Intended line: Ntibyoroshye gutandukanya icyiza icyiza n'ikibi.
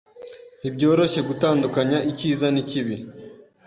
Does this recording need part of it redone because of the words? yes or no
yes